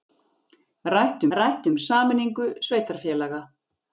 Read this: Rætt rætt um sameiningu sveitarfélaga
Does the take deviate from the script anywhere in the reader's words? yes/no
no